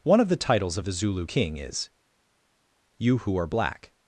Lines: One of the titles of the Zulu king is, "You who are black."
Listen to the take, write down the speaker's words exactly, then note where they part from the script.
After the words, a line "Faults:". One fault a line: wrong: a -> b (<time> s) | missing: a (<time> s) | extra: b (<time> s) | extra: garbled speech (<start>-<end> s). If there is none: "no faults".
One of the titles of the Zulu king is, "You who are black."
Faults:
no faults